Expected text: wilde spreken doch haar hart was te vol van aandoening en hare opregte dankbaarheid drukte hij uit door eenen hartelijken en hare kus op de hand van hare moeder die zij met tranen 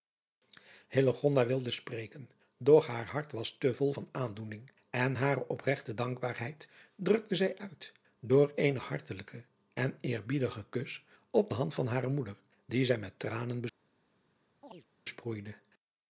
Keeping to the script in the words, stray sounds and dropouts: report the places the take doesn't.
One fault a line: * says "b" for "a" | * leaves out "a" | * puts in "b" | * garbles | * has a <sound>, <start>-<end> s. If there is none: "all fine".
* says "zij" for "hij"
* says "eerbiedigen" for "hare"
* has a chirp, 14.6-14.9 s